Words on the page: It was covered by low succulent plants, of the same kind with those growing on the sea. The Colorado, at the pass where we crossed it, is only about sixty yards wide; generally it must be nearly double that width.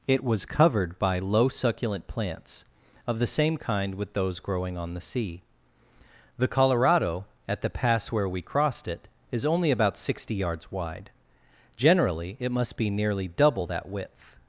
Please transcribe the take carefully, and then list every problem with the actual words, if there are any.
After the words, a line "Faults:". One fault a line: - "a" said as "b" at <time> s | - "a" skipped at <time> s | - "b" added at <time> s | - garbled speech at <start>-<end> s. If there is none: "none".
It was covered by low succulent plants, of the same kind with those growing on the sea. The Colorado, at the pass where we crossed it, is only about sixty yards wide; generally it must be nearly double that width.
Faults:
none